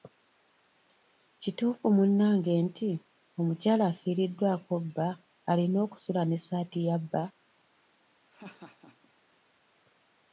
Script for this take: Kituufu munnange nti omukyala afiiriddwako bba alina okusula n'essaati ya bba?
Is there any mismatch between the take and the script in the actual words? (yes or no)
no